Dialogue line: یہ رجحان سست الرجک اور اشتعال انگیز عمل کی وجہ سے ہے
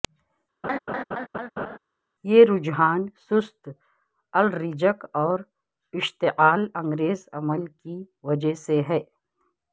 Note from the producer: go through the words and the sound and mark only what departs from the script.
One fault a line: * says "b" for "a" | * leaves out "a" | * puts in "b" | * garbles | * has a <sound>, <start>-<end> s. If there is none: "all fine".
* has a laugh, 0.6-1.8 s